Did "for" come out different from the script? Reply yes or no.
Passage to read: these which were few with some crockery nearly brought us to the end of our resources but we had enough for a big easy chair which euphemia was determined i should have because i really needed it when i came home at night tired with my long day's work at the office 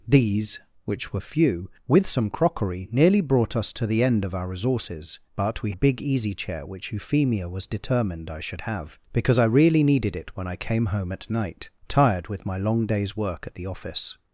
yes